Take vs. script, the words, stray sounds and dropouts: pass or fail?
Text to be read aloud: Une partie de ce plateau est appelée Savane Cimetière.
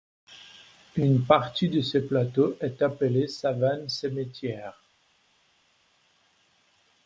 pass